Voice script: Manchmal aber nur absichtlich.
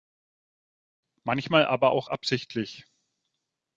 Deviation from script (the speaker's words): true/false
true